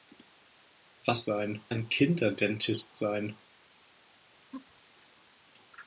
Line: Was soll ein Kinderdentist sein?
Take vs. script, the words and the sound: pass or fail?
fail